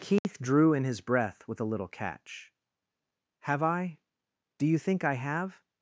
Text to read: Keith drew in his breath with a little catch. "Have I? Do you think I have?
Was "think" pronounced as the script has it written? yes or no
yes